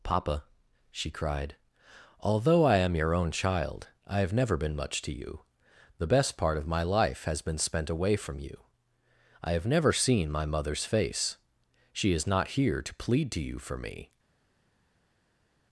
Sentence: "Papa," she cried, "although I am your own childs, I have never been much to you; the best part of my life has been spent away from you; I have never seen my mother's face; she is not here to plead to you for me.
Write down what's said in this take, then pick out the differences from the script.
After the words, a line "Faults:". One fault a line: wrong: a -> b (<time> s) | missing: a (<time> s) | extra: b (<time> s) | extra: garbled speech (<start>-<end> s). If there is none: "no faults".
"Papa," she cried, "although I am your own child, I have never been much to you; the best part of my life has been spent away from you; I have never seen my mother's face; she is not here to plead to you for me.
Faults:
wrong: childs -> child (3.3 s)